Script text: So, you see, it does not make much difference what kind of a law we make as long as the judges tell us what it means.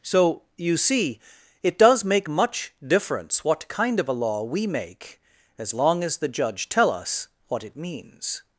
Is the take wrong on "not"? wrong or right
wrong